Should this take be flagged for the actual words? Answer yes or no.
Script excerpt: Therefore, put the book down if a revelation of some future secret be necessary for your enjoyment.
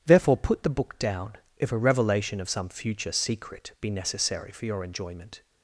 no